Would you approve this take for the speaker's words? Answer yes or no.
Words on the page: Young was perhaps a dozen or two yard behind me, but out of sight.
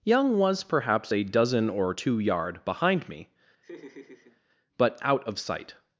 yes